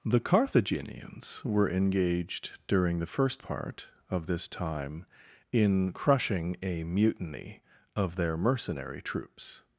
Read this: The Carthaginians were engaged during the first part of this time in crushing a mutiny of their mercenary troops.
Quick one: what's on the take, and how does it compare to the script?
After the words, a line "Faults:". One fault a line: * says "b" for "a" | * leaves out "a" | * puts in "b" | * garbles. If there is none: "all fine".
The Carthaginians were engaged during the first part of this time in crushing a mutiny of their mercenary troops.
Faults:
all fine